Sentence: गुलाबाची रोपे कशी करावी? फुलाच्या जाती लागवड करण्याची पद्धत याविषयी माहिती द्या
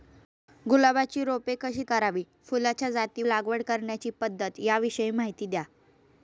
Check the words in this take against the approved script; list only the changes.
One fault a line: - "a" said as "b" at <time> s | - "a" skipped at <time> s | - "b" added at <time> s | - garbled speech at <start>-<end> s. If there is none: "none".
none